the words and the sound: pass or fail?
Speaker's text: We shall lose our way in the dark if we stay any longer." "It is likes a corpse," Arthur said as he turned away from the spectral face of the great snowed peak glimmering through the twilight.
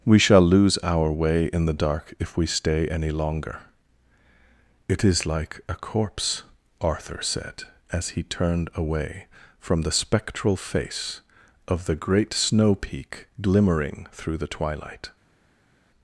fail